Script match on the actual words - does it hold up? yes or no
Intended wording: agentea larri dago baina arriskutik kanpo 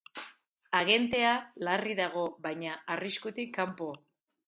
yes